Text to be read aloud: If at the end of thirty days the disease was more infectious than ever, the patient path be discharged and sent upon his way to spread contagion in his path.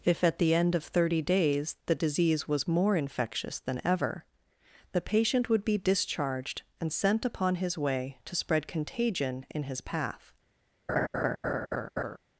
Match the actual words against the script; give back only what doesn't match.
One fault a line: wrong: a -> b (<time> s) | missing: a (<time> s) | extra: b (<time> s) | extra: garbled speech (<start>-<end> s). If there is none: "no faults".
wrong: path -> would (5.5 s)